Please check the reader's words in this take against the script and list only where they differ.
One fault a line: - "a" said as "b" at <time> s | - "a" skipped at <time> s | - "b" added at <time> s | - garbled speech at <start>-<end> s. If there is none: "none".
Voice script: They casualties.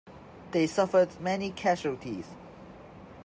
- "suffered many" added at 0.7 s